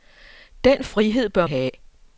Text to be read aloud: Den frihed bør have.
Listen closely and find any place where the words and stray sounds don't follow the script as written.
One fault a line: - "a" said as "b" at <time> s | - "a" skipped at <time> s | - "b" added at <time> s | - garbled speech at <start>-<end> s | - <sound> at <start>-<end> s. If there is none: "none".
none